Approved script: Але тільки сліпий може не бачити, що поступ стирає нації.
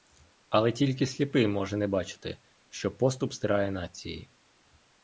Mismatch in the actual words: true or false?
false